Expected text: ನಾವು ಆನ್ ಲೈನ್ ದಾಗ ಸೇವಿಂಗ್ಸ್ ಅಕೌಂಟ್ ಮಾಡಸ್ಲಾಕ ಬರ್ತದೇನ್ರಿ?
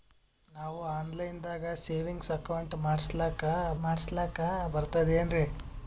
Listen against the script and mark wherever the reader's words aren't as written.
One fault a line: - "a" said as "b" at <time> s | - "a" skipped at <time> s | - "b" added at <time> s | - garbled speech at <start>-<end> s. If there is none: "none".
- "ಮಾಡಸ್ಲಾಕ" added at 3.8 s